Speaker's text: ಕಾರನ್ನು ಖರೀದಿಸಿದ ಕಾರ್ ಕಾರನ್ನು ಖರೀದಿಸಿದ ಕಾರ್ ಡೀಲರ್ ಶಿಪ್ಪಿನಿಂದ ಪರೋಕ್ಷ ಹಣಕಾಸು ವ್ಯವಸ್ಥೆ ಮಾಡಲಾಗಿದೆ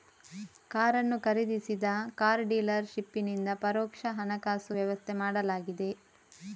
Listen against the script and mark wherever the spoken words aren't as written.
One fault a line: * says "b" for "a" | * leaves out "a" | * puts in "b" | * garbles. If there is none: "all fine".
* leaves out "ಕಾರನ್ನು ಖರೀದಿಸಿದ ಕಾರ್"